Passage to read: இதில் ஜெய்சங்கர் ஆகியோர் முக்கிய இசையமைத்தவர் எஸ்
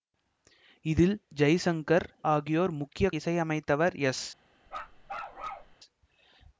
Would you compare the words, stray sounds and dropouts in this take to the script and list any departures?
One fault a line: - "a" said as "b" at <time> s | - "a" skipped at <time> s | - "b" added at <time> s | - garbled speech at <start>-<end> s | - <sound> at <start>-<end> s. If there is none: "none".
- bark at 4.7-5.8 s